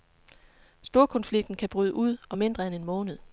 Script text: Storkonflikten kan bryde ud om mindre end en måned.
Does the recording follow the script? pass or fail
pass